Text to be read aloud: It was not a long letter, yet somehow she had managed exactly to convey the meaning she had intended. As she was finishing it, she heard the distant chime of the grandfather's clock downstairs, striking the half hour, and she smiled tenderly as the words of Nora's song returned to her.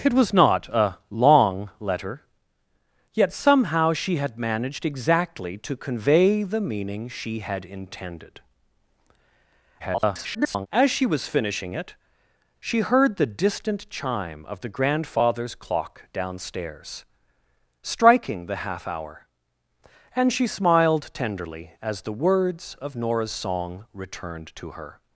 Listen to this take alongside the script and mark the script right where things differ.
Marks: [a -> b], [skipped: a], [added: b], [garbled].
It was not a long letter, yet somehow she had managed exactly to convey the meaning she had intended. [garbled] As she was finishing it, she heard the distant chime of the grandfather's clock downstairs, striking the half hour, and she smiled tenderly as the words of Nora's song returned to her.